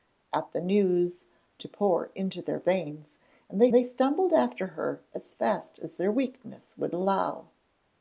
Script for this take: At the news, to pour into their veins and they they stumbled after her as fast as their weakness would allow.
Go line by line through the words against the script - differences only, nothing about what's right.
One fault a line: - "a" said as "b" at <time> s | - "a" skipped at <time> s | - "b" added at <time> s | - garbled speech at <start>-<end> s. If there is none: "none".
none